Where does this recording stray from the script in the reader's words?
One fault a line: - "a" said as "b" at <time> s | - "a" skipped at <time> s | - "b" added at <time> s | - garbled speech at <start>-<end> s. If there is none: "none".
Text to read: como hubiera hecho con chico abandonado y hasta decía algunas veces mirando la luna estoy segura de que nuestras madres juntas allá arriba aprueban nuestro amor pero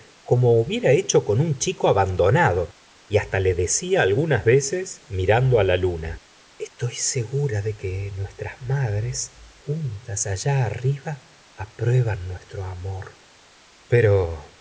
- "un" added at 1.4 s
- "le" added at 3.4 s